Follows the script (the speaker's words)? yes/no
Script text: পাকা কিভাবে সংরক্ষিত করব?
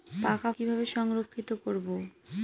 yes